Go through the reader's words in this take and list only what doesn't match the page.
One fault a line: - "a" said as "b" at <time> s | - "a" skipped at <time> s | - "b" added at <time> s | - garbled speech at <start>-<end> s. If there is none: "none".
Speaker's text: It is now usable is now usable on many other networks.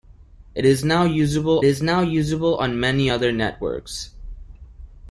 none